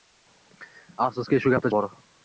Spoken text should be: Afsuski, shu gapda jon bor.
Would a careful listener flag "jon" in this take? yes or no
yes